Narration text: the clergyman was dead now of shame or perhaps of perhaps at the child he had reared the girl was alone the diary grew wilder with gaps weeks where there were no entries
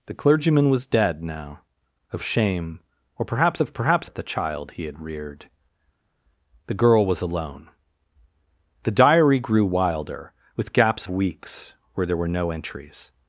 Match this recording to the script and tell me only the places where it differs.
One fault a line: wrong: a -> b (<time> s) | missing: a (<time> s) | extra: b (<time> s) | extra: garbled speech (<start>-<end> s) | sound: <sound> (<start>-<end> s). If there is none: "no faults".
no faults